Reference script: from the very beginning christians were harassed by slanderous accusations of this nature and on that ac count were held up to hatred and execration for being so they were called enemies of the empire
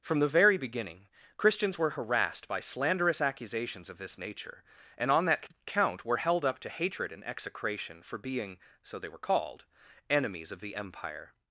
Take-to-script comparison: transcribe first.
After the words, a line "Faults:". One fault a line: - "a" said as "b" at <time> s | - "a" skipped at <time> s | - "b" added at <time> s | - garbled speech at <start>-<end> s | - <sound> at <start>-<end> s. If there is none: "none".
from the very beginning christians were harassed by slanderous accusations of this nature and on that count were held up to hatred and execration for being so they were called enemies of the empire
Faults:
- "ac" skipped at 5.5 s